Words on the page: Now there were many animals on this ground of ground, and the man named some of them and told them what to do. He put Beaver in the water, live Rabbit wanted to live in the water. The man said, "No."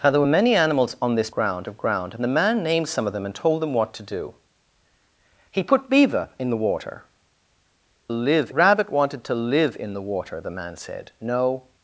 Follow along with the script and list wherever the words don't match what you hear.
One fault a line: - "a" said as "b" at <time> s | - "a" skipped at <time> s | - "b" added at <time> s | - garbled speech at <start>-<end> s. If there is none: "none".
none